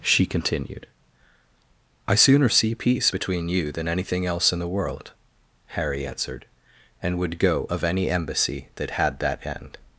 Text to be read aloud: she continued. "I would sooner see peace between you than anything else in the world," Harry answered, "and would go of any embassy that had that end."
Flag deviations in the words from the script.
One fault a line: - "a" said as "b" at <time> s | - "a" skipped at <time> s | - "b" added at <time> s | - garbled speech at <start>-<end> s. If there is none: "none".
- "would" skipped at 2.1 s